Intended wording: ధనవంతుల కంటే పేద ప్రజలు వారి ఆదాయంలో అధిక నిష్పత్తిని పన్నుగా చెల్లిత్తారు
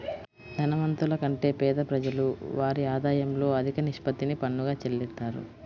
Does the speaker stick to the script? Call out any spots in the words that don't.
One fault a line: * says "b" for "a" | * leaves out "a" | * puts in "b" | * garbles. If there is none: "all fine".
all fine